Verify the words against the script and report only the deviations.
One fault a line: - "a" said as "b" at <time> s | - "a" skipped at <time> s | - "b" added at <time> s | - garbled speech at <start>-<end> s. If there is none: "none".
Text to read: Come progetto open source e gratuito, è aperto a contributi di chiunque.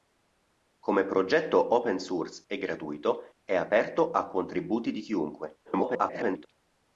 - garbled speech at 5.6-6.5 s